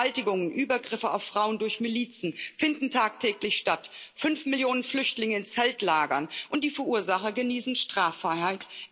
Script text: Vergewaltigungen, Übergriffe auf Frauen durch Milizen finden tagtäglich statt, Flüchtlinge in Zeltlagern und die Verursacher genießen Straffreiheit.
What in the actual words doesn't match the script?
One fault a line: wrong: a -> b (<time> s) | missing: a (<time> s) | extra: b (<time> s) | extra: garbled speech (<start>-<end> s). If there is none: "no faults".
extra: fünf Millionen (4.2 s)